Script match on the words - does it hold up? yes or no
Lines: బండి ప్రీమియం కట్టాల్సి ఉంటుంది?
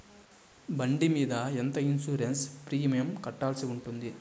no